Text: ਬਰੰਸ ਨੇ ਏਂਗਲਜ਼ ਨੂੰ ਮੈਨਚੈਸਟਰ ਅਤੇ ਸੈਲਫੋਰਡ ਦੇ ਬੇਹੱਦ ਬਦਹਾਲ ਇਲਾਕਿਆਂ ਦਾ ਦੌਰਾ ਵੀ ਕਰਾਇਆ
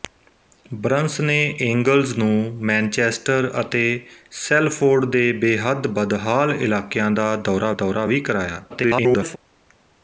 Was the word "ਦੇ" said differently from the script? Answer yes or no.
no